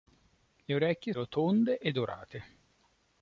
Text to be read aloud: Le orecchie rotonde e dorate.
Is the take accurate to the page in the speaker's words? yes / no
yes